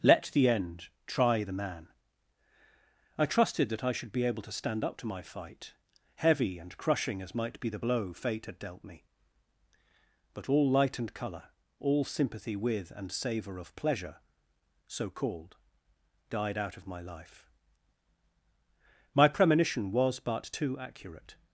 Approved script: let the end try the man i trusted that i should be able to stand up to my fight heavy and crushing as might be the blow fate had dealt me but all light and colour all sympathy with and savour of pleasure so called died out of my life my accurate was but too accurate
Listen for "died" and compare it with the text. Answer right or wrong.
right